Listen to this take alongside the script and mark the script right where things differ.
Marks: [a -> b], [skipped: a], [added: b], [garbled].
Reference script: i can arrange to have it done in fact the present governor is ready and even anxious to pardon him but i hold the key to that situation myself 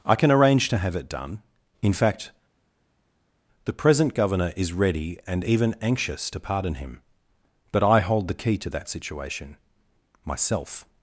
i can arrange to have it done in fact the present governor is ready and even anxious to pardon him but i hold the key to that situation myself